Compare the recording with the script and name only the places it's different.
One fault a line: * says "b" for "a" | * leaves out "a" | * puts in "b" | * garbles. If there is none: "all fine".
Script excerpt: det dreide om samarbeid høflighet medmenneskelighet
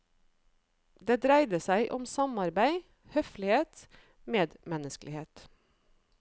* puts in "seg"